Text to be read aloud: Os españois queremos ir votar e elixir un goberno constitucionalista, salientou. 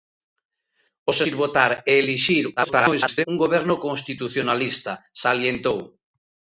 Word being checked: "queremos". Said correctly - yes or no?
no